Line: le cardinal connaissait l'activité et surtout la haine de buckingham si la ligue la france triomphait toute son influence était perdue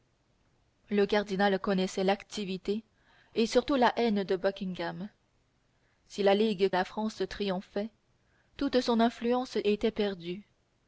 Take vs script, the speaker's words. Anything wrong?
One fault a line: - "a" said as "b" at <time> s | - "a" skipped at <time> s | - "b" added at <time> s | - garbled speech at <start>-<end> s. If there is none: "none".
none